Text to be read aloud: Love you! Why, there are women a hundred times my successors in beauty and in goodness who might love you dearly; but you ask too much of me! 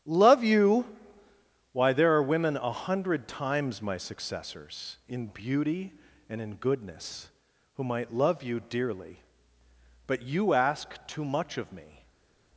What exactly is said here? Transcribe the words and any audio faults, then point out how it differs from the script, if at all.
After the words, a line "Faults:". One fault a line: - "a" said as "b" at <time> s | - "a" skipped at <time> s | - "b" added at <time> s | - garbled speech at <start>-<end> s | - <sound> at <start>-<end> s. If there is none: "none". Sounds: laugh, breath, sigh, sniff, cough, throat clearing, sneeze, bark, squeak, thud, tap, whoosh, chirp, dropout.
Love you! Why, there are women a hundred times my successors in beauty and in goodness who might love you dearly; but you ask too much of me!
Faults:
none